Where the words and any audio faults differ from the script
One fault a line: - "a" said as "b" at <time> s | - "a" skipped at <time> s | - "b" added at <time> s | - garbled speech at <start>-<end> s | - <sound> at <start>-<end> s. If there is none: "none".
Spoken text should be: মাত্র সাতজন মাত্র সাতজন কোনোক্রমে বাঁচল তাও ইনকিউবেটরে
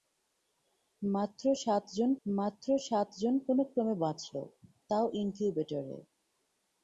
none